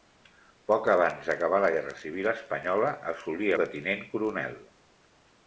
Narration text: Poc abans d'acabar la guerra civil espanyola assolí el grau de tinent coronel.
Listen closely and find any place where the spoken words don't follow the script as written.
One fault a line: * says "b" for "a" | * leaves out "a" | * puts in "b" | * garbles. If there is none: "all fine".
* leaves out "el grau"